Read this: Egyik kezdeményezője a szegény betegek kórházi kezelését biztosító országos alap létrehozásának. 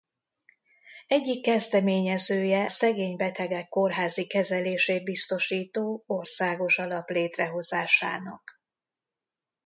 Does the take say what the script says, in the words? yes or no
no